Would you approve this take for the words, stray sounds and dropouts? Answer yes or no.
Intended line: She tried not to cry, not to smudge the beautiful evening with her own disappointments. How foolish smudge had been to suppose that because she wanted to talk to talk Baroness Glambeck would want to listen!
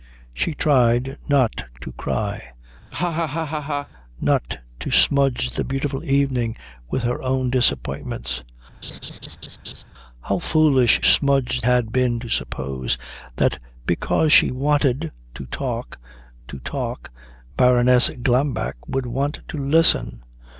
no